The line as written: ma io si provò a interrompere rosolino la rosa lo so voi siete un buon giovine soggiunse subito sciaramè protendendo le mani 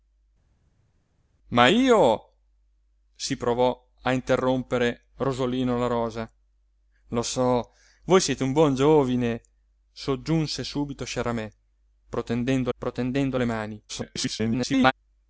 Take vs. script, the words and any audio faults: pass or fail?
fail